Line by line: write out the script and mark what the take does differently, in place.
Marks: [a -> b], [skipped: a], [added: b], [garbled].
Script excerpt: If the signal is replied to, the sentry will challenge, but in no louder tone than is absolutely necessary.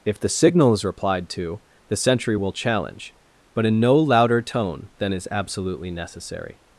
If the signal is replied to, the sentry will challenge, but in no louder tone than is absolutely necessary.